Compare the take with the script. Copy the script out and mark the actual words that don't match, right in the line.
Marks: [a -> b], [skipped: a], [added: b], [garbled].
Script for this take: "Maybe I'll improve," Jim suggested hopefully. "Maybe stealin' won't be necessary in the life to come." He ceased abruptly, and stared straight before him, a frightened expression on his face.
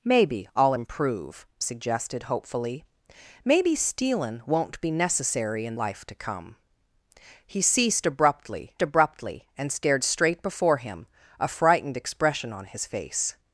"Maybe I'll improve," [skipped: Jim] suggested hopefully. "Maybe stealin' won't be necessary in [skipped: the] life to come." He ceased abruptly, [added: abruptly] and stared straight before him, a frightened expression on his face.